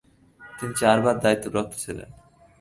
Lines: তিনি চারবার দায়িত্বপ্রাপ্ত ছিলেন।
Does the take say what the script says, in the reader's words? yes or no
yes